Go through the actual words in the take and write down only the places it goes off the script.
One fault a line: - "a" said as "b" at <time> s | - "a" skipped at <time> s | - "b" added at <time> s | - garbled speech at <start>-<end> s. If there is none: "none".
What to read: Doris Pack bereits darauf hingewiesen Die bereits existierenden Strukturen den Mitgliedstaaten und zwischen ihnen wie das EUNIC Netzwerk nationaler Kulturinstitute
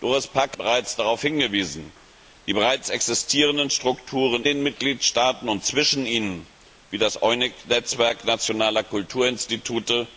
none